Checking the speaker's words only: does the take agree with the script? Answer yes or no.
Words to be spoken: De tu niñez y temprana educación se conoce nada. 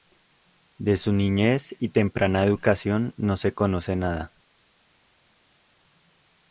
no